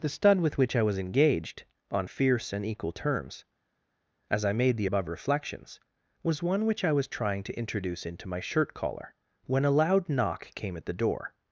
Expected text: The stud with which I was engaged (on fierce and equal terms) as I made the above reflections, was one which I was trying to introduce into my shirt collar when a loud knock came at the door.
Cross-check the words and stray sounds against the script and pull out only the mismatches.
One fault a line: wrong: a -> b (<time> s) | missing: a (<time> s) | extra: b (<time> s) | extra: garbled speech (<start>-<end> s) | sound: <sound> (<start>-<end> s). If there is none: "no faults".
no faults